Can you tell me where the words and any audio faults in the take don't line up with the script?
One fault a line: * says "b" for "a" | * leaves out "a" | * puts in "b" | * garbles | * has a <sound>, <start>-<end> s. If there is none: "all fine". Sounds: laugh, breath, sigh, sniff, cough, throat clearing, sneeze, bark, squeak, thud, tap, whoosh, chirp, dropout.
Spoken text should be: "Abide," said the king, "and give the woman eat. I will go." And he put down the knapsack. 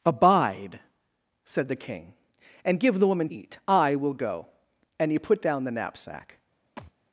* has a thud, 6.8-6.9 s